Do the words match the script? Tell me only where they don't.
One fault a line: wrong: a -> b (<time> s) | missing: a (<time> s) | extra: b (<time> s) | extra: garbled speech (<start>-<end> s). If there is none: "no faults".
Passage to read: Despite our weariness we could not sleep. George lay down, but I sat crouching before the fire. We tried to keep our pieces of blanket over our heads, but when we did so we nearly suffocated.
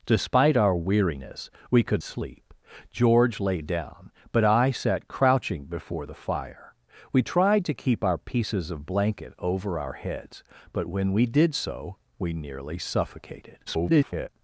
missing: not (2.0 s)
extra: garbled speech (13.7-14.3 s)